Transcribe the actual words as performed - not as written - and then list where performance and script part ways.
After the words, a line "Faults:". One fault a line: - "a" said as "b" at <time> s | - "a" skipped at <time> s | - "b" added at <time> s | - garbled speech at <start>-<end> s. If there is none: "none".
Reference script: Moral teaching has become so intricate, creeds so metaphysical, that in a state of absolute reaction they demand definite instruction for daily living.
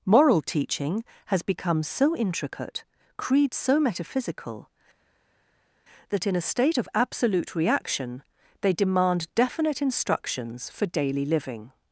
Moral teaching has become so intricate, creeds so metaphysical, that in a state of absolute reaction they demand definite instructions for daily living.
Faults:
- "instruction" said as "instructions" at 9.8 s